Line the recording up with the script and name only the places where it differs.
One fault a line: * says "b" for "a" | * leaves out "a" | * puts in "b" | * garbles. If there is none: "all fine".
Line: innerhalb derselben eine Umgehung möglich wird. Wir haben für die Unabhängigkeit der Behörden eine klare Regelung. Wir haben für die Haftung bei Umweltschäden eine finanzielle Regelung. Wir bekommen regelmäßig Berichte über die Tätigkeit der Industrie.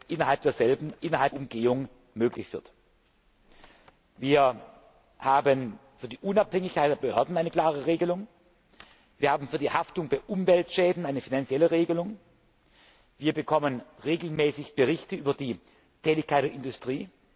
* says "innerhalb" for "eine"